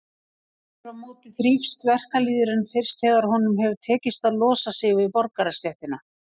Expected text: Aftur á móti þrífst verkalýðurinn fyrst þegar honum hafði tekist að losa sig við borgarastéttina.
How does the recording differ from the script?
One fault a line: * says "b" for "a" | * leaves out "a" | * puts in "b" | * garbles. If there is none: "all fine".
* says "hefur" for "hafði"